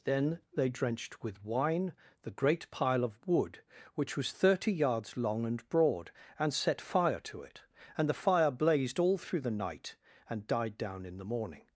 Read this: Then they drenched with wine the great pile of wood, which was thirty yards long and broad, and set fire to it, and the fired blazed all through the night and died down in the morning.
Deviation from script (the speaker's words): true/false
true